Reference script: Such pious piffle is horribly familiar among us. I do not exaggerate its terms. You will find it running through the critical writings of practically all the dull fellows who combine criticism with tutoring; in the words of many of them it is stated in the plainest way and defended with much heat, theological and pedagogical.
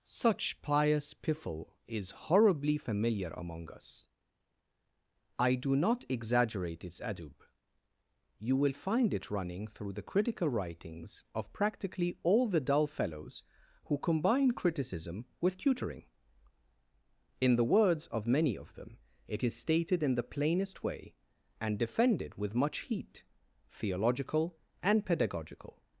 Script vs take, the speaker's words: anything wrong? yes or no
yes